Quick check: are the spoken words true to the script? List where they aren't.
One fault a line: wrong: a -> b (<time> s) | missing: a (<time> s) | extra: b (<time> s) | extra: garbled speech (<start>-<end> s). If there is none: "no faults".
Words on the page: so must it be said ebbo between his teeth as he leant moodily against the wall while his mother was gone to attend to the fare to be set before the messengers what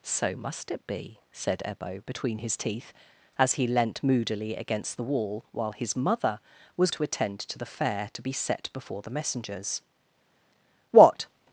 missing: gone (6.9 s)